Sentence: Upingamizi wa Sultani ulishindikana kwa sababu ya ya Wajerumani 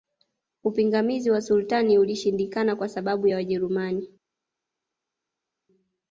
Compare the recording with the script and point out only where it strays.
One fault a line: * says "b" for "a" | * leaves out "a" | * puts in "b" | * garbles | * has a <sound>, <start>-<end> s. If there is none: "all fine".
* leaves out "ya"